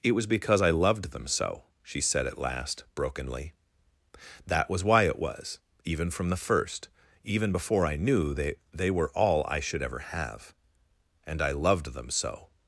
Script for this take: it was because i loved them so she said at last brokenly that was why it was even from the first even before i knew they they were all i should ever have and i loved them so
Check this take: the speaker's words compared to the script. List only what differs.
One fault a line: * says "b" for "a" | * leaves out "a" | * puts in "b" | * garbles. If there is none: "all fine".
all fine